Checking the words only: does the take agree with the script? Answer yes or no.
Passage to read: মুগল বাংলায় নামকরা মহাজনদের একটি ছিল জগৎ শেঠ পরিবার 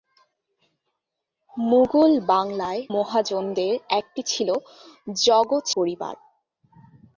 no